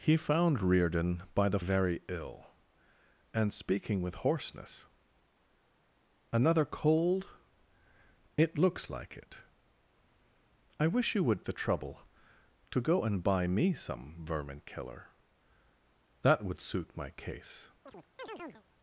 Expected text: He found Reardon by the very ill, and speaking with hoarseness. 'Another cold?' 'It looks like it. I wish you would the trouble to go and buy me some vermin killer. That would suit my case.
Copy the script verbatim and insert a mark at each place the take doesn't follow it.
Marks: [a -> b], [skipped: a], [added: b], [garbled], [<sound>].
He found Reardon by the very ill, and speaking with hoarseness. 'Another cold?' 'It looks like it. I wish you would the trouble to go and buy me some vermin killer. That would suit my case. [chirp]